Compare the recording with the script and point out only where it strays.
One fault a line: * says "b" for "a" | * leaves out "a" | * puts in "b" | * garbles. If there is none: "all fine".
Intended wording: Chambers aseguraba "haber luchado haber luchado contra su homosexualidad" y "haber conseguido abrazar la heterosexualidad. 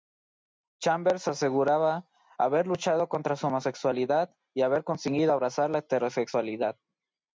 * leaves out "haber luchado"